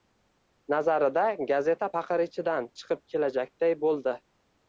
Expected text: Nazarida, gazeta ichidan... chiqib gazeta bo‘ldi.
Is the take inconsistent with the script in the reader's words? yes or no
yes